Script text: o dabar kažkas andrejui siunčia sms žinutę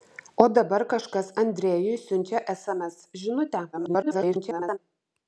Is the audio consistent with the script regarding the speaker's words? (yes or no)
no